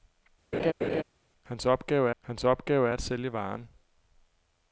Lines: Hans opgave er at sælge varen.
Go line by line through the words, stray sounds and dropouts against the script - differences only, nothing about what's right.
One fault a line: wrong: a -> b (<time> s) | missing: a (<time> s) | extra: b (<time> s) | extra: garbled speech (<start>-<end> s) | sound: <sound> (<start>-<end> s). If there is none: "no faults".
sound: laugh (0.5-1.0 s)
extra: hans opgave (2.2 s)